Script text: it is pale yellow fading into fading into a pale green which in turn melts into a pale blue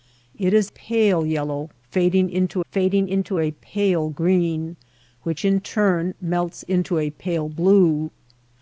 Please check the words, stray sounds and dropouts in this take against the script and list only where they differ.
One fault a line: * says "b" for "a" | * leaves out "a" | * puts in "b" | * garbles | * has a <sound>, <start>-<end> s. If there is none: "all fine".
all fine